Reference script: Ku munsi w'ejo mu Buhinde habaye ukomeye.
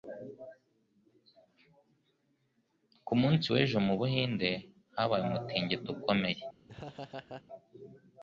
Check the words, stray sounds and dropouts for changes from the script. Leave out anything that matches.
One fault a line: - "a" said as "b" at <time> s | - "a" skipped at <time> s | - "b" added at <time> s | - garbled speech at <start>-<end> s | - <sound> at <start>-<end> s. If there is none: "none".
- "umutingito" added at 5.3 s
- laugh at 6.7-7.4 s